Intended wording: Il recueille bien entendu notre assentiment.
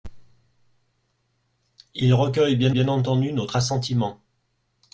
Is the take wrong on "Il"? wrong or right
right